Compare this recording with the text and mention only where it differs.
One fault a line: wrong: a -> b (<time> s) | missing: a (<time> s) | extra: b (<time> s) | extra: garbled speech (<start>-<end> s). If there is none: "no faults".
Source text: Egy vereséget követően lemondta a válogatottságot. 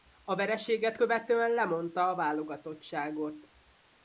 wrong: Egy -> A (0.2 s)